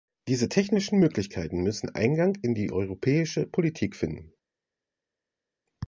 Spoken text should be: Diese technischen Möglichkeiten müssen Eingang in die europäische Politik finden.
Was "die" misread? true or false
false